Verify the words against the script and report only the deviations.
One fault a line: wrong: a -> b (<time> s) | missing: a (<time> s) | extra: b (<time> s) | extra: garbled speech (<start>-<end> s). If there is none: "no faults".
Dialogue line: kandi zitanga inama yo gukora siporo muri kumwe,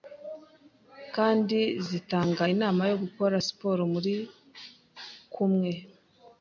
no faults